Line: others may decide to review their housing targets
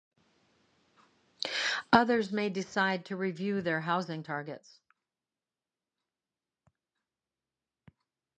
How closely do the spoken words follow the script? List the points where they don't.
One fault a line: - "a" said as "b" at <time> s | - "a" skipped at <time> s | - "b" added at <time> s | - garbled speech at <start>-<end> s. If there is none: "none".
none